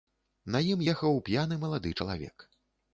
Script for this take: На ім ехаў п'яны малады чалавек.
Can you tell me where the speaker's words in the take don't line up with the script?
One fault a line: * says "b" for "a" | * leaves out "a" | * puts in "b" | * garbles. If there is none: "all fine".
all fine